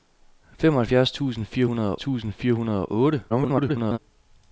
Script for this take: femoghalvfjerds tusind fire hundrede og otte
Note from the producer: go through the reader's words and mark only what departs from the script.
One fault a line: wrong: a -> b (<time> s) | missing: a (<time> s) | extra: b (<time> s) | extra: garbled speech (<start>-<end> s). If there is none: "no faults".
extra: tusind fire hundrede (2.0 s)
extra: garbled speech (3.3-4.0 s)